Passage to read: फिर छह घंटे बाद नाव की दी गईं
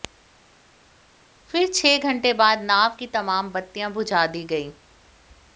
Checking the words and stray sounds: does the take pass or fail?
fail